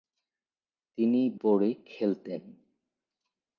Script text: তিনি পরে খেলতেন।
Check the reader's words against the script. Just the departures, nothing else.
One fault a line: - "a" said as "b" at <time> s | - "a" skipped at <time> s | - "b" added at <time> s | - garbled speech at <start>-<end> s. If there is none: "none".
none